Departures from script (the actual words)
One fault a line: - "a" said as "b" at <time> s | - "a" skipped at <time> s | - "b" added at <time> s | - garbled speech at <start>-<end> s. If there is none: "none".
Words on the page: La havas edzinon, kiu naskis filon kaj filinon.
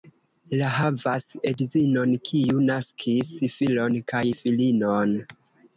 none